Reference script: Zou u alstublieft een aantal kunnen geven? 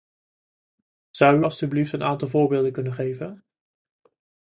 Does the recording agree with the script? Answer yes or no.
no